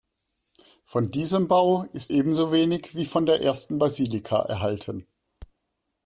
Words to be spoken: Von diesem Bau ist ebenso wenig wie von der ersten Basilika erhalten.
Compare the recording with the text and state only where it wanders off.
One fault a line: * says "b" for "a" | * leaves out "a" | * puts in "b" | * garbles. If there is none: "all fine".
all fine